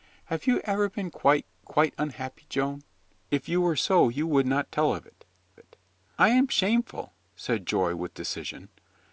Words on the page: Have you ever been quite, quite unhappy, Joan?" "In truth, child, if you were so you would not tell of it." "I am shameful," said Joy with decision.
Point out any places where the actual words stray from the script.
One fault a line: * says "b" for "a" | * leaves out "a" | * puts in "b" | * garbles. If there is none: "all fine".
* leaves out "In truth child"
* puts in "it"